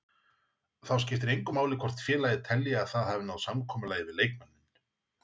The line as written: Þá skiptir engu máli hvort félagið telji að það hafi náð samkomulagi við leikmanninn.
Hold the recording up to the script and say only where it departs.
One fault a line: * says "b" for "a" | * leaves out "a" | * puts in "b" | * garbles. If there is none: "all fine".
all fine